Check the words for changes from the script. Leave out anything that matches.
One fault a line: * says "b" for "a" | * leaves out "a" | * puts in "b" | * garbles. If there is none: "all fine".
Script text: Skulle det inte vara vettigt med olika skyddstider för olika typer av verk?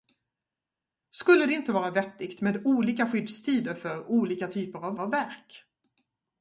* puts in "av"